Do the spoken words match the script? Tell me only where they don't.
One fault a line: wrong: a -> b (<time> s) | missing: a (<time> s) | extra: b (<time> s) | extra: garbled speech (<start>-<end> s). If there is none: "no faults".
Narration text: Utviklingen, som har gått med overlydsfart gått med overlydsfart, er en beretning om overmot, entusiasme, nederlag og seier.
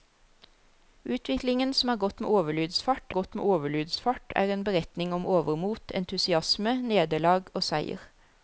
no faults